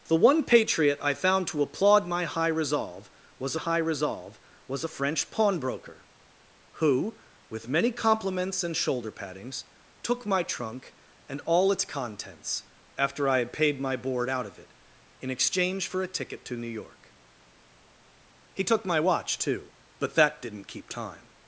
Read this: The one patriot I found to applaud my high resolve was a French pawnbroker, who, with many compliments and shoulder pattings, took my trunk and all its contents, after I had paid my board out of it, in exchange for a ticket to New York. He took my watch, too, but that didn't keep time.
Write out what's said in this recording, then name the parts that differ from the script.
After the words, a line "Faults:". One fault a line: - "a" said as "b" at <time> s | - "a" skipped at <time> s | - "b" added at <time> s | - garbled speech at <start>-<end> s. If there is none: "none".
The one patriot I found to applaud my high resolve was high resolve was a French pawnbroker, who, with many compliments and shoulder pattings, took my trunk and all its contents, after I had paid my board out of it, in exchange for a ticket to New York. He took my watch, too, but that didn't keep time.
Faults:
- "high resolve was" added at 3.6 s